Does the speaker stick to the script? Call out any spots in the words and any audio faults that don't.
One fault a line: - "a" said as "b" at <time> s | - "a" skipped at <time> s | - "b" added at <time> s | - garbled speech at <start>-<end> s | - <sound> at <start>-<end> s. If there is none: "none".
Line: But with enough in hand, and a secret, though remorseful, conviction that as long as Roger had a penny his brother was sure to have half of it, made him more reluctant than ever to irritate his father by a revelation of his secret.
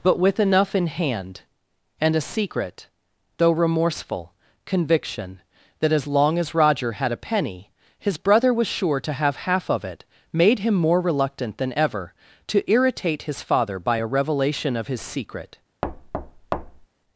- thud at 15.8-16.9 s